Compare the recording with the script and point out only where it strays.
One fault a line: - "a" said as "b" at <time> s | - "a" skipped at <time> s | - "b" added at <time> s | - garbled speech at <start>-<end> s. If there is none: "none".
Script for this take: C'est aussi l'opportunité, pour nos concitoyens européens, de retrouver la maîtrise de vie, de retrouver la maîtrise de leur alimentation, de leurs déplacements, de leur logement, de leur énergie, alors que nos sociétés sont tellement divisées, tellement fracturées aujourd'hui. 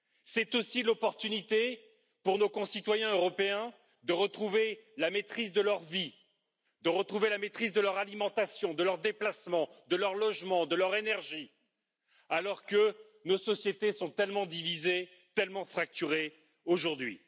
- "leur" added at 5.6 s